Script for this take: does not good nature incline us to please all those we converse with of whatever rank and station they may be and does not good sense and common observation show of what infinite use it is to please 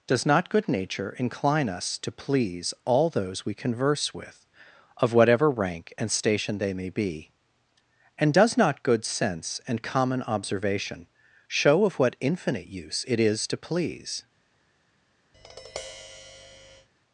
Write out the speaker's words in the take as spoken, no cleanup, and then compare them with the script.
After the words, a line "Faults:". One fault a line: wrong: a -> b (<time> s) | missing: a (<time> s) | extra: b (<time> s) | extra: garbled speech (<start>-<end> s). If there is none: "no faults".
does not good nature incline us to please all those we converse with of whatever rank and station they may be and does not good sense and common observation show of what infinite use it is to please
Faults:
no faults